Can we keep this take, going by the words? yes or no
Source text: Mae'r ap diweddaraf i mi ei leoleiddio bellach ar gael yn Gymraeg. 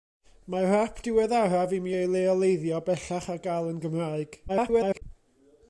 no